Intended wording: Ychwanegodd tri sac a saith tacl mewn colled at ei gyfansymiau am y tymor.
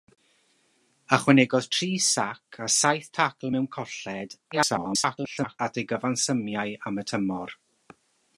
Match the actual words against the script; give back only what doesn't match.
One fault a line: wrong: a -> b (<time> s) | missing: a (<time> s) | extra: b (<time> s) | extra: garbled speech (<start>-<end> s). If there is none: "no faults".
extra: garbled speech (4.5-5.6 s)